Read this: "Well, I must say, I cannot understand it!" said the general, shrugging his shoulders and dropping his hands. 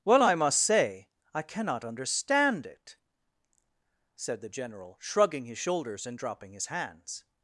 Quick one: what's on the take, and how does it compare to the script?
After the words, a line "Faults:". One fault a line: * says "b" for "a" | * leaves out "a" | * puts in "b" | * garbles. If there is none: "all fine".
"Well, I must say, I cannot understand it!" said the general, shrugging his shoulders and dropping his hands.
Faults:
all fine